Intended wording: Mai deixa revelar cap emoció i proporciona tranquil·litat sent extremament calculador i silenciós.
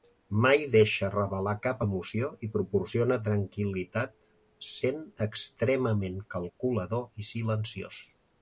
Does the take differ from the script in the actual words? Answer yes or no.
no